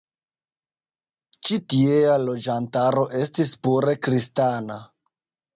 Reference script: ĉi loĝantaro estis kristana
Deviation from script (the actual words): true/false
true